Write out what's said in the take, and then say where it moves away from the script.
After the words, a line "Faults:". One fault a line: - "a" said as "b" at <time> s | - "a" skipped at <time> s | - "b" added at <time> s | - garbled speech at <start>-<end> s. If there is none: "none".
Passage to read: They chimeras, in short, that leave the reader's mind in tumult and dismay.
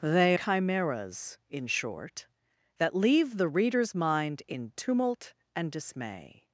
They chimeras, in short, that leave the reader's mind in tumult and dismay.
Faults:
none